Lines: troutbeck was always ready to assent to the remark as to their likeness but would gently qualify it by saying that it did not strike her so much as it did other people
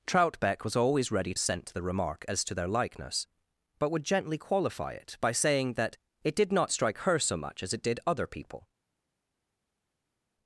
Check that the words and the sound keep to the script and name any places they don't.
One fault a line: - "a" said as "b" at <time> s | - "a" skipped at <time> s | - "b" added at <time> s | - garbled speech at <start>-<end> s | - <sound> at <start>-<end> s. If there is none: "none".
- "to" skipped at 1.3 s